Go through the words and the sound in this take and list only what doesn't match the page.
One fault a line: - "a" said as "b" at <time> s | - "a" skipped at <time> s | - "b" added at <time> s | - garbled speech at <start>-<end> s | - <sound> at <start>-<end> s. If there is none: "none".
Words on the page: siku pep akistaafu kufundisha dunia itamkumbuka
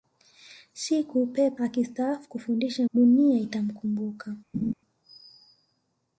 - laugh at 4.5-4.7 s